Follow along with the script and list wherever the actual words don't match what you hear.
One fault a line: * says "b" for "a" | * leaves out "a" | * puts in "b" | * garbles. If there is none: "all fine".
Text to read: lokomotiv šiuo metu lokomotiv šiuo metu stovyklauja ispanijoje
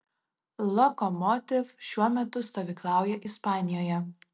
* leaves out "lokomotiv šiuo metu"